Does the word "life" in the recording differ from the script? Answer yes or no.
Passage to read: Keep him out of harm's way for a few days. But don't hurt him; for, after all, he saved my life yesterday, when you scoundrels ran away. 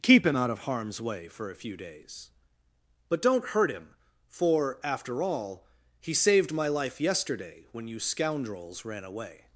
no